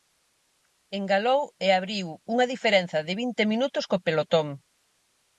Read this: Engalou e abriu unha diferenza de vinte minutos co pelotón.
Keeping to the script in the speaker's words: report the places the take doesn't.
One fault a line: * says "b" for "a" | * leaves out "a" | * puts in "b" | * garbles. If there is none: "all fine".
all fine